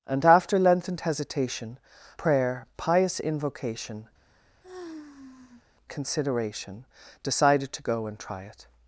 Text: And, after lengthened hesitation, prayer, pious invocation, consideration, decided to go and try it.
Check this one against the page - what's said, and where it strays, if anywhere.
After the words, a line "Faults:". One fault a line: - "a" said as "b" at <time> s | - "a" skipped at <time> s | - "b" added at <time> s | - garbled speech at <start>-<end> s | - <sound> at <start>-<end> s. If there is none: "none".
And, after lengthened hesitation, prayer, pious invocation, consideration, decided to go and try it.
Faults:
- sigh at 4.2-5.6 s